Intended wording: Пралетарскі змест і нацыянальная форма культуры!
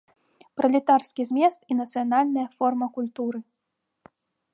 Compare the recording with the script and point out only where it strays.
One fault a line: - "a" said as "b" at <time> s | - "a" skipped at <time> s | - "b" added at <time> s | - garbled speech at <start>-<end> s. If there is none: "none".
none